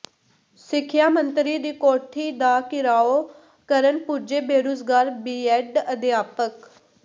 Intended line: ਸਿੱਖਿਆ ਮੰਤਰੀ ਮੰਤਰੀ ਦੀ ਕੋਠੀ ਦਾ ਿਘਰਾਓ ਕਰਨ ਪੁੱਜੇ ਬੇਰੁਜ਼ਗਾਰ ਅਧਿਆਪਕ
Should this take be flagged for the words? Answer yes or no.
yes